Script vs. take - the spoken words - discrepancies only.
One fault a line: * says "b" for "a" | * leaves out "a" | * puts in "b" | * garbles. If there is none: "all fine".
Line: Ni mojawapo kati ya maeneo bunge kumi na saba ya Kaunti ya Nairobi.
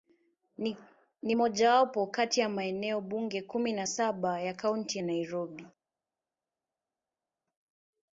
all fine